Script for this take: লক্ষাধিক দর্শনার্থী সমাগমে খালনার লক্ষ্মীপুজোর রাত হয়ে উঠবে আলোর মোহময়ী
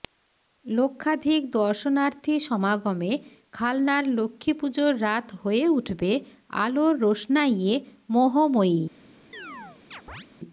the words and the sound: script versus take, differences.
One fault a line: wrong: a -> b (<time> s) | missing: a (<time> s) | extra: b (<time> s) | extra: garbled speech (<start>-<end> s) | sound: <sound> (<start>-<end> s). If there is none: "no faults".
extra: রোশনাইয়ে (7.0 s)
sound: chirp (9.3-10.3 s)